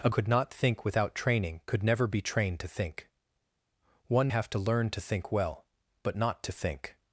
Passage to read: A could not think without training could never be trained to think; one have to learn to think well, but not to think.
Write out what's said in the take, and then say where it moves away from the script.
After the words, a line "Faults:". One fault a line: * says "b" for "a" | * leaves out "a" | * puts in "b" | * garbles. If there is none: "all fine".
A could not think without training could never be trained to think; one have to learn to think well, but not to think.
Faults:
all fine